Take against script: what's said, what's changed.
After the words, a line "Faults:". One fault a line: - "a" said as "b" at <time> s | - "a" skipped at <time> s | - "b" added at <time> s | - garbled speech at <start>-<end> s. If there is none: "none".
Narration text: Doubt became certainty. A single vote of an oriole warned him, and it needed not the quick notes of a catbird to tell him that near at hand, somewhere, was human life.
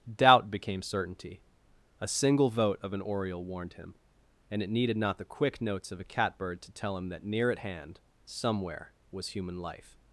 Doubt became certainty. A single vote of an oriole warned him, and it needed not the quick notes of a catbird to tell him that near at hand, somewhere, was human life.
Faults:
none